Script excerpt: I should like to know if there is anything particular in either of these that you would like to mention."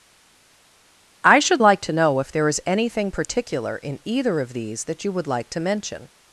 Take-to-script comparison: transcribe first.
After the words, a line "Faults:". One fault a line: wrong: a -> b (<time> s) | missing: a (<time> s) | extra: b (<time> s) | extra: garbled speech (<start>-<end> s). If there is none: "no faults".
I should like to know if there is anything particular in either of these that you would like to mention."
Faults:
no faults